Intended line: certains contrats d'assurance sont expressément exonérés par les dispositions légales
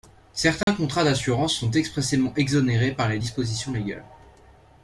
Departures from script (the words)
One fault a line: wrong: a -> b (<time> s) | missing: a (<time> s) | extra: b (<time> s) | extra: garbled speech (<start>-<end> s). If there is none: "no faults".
no faults